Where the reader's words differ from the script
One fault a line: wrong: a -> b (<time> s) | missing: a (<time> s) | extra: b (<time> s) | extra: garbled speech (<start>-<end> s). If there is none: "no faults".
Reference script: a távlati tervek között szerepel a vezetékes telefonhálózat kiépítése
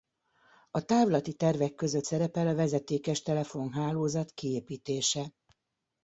no faults